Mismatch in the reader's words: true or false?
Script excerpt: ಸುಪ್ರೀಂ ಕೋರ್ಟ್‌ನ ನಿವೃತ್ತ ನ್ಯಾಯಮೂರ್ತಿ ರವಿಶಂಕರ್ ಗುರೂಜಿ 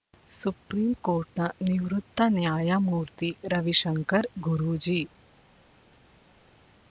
false